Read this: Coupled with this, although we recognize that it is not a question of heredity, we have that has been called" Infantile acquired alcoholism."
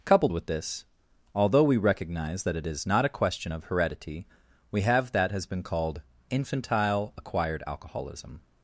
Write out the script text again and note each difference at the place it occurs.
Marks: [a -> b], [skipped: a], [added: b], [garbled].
Coupled with this, although we recognize that it is not a question of heredity, we have that has been called" Infantile acquired alcoholism."